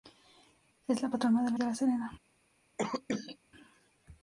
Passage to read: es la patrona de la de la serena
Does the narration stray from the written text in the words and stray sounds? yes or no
yes